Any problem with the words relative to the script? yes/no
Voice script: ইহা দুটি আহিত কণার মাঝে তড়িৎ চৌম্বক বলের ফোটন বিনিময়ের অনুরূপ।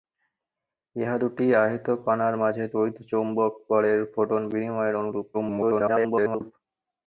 yes